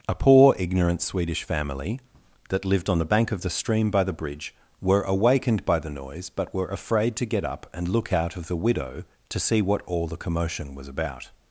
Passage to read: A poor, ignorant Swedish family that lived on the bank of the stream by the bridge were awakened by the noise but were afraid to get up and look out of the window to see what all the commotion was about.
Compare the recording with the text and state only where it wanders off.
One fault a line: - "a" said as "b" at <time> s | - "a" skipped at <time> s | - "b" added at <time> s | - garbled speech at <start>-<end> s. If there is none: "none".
- "window" said as "widow" at 8.6 s